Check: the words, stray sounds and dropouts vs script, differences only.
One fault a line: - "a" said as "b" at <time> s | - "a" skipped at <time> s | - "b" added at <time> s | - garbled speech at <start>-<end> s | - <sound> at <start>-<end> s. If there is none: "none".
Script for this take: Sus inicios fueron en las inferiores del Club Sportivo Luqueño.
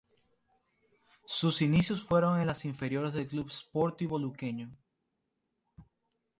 none